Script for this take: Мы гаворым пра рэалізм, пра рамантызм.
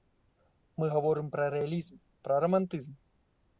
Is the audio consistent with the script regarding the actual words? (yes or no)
yes